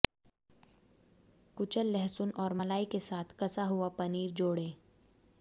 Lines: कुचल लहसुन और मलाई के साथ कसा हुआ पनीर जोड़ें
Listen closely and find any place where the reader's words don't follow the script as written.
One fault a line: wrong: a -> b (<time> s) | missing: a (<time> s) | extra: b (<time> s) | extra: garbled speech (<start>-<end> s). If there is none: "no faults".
no faults